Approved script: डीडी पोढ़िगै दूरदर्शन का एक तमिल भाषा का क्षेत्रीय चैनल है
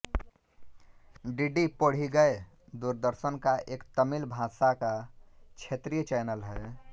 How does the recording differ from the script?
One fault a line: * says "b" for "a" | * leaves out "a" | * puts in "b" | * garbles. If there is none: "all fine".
all fine